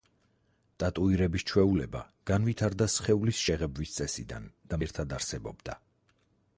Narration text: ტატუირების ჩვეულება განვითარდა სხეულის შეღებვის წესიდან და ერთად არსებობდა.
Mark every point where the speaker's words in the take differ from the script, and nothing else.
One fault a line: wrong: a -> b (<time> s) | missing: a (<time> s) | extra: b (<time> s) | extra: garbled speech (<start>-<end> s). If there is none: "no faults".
no faults